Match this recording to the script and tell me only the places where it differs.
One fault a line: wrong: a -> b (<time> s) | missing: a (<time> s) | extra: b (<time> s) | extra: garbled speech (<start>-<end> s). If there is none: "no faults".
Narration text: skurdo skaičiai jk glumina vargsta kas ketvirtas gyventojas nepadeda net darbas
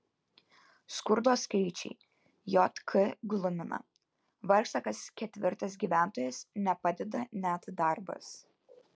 no faults